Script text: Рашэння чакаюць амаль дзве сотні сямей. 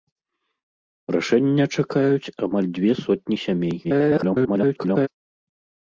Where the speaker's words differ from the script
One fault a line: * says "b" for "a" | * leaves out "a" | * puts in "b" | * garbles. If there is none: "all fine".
* garbles